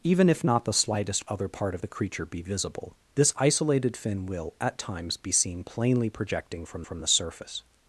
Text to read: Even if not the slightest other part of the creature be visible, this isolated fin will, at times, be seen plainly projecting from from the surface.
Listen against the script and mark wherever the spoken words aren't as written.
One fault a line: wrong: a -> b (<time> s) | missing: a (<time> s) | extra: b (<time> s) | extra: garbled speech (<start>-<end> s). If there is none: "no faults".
no faults